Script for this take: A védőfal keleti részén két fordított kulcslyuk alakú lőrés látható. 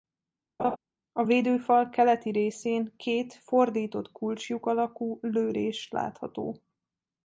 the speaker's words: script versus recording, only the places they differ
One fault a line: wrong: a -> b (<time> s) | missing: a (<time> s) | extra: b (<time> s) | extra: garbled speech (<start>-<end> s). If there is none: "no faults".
no faults